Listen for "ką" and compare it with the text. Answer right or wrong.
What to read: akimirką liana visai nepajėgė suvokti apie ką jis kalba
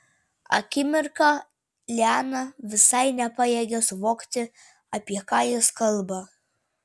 right